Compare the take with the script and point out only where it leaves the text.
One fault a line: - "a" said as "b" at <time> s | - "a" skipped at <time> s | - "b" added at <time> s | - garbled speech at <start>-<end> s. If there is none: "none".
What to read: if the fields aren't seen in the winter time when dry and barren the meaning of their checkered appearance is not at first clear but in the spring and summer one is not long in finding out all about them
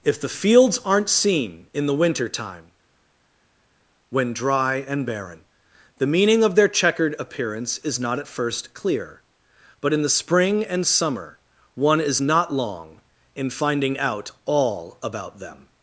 none